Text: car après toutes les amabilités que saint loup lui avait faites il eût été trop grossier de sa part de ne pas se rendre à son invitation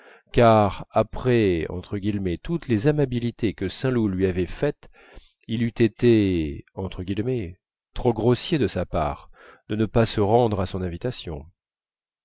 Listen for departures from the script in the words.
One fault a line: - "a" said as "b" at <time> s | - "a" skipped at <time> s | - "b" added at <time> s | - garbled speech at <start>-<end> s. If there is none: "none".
none